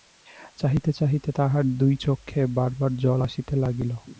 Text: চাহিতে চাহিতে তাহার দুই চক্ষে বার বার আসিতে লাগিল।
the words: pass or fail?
fail